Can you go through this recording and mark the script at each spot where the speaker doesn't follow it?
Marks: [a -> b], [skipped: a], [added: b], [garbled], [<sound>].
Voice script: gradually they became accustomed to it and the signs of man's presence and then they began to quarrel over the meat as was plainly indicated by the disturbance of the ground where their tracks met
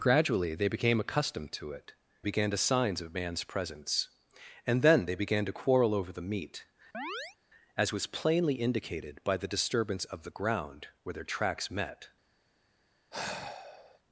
gradually they became accustomed to it [and -> began] the signs of man's presence and then they began to quarrel over the meat [chirp] as was plainly indicated by the disturbance of the ground where their tracks met [sigh]